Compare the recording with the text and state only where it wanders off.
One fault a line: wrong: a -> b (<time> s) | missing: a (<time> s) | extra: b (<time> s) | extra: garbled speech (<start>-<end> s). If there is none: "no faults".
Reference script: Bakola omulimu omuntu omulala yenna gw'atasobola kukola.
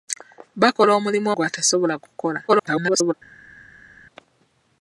missing: omuntu omulala yenna (1.3 s)
extra: garbled speech (2.5-3.1 s)